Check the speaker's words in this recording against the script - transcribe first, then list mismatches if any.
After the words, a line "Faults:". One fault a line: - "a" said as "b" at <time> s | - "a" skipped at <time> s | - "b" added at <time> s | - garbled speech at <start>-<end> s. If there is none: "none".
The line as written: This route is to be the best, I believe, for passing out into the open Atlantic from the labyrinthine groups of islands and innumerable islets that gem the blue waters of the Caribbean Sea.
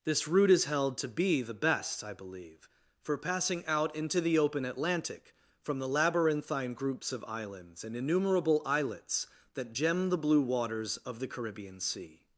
This route is held to be the best, I believe, for passing out into the open Atlantic from the labyrinthine groups of islands and innumerable islets that gem the blue waters of the Caribbean Sea.
Faults:
- "held" added at 0.7 s